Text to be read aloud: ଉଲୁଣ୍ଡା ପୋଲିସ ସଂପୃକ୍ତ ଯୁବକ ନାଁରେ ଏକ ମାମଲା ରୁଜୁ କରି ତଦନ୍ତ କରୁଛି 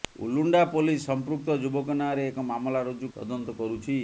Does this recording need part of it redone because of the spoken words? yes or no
yes